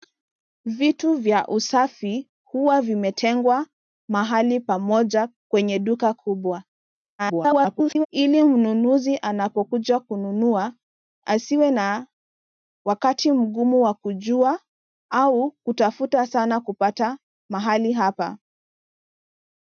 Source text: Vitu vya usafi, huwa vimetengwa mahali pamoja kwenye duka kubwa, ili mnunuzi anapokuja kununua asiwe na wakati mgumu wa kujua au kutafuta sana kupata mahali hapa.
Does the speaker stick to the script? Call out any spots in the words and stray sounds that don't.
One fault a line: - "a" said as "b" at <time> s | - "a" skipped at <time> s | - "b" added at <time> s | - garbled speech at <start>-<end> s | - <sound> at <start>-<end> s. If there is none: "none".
- garbled speech at 7.2-8.1 s